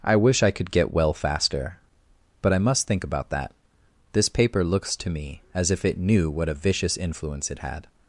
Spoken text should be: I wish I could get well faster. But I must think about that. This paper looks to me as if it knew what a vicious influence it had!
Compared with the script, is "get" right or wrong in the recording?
right